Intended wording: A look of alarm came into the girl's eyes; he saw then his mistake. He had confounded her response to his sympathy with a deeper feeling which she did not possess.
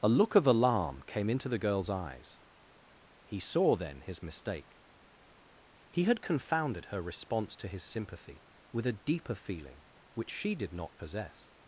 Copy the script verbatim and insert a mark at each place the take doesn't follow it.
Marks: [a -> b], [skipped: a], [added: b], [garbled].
A look of alarm came into the girl's eyes; he saw then his mistake. He had confounded her response to his sympathy with a deeper feeling which she did not possess.